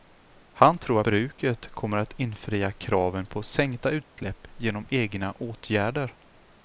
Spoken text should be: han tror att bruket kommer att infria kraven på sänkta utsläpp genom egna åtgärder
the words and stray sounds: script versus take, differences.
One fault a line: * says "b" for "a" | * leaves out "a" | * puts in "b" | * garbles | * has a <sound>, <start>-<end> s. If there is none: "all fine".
* leaves out "att"
* has a dropout, 4.0-4.2 s